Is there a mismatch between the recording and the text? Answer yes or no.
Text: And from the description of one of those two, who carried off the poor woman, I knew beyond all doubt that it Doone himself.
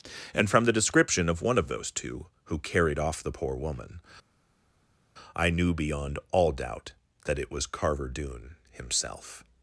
yes